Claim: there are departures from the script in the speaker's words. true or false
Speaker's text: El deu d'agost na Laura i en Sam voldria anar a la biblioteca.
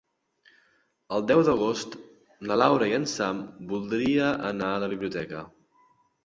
false